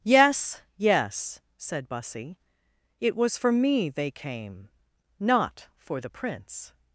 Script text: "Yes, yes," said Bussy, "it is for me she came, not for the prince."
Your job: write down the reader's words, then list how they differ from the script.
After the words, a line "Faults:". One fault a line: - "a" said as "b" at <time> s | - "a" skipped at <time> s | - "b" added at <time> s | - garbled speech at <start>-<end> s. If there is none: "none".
"Yes, yes," said Bussy, "it was for me they came, not for the prince."
Faults:
- "is" said as "was" at 3.1 s
- "she" said as "they" at 3.9 s